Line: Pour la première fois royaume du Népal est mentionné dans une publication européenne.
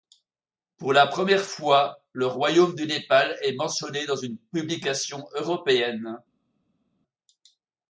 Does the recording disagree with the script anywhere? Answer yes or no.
yes